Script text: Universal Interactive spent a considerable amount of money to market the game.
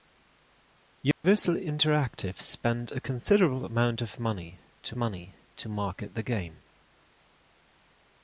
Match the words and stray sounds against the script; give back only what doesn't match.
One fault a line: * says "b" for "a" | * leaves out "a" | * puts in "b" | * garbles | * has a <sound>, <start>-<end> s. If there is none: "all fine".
* has a dropout, 1.1-1.2 s
* puts in "money to"